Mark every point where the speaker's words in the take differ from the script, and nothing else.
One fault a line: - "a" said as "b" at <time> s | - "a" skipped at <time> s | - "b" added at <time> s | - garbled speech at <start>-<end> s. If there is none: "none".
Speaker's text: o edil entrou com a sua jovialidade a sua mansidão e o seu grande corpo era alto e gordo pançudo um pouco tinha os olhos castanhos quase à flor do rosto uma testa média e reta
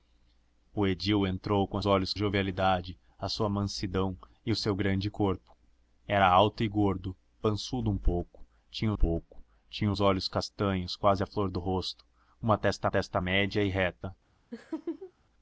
- "sua" said as "olhos" at 1.8 s
- "pouco tinha" added at 8.9 s
- "testa" added at 12.9 s